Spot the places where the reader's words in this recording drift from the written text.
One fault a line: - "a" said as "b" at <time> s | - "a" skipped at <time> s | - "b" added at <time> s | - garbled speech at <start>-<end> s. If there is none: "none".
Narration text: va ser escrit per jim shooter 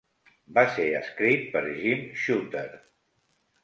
none